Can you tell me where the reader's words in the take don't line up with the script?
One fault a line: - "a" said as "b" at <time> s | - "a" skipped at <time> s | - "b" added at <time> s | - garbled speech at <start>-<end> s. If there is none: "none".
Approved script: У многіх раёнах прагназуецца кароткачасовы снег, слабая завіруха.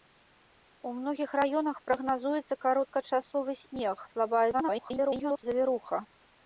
- garbled speech at 4.5-5.4 s